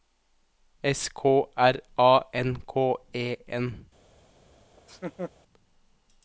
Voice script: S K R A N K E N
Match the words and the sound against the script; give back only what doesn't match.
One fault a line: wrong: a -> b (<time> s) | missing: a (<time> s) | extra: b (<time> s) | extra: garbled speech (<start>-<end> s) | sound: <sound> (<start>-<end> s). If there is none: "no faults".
sound: laugh (4.8-5.3 s)